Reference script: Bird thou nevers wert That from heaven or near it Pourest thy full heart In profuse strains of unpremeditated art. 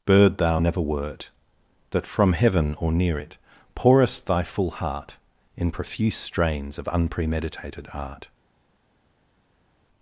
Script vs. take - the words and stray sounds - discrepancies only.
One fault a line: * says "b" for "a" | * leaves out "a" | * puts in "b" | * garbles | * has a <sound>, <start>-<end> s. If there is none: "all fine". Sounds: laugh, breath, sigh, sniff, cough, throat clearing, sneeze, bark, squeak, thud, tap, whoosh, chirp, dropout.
* says "never" for "nevers"